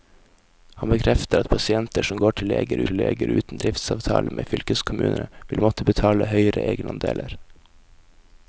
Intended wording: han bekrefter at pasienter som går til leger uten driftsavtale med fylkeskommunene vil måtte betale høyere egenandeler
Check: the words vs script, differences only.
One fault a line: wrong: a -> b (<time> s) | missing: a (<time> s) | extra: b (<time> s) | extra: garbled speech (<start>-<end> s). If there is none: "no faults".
extra: til leger (2.9 s)